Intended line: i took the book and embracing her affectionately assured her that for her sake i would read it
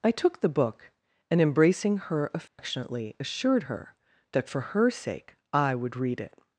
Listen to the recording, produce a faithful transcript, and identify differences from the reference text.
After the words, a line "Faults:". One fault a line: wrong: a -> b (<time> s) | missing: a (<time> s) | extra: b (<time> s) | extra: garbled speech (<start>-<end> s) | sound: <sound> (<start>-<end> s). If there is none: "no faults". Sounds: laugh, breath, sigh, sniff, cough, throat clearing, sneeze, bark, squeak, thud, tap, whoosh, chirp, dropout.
i took the book and embracing her affectionately assured her that for her sake i would read it
Faults:
sound: dropout (2.5-2.6 s)